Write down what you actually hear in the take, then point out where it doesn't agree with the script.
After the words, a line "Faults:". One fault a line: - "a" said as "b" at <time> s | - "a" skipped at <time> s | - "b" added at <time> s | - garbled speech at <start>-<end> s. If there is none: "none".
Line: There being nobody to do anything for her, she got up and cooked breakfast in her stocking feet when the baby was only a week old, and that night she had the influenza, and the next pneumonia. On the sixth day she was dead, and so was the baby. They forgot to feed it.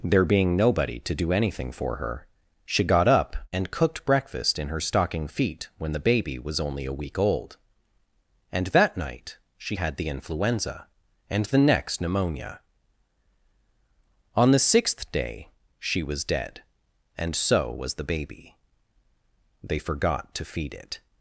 There being nobody to do anything for her, she got up and cooked breakfast in her stocking feet when the baby was only a week old, and that night she had the influenza, and the next pneumonia. On the sixth day she was dead, and so was the baby. They forgot to feed it.
Faults:
none